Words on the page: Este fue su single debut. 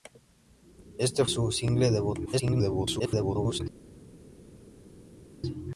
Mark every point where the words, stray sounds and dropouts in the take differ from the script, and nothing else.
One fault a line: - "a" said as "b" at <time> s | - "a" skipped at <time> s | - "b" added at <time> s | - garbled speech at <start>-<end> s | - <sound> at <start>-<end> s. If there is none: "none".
- "fue" skipped at 1.2 s
- garbled speech at 2.3-3.6 s